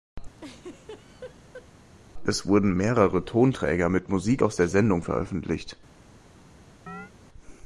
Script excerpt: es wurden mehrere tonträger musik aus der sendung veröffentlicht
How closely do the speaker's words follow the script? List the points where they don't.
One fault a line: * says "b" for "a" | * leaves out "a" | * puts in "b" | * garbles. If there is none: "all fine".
* puts in "mit"